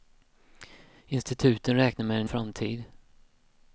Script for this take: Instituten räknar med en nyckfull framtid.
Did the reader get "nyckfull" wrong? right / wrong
wrong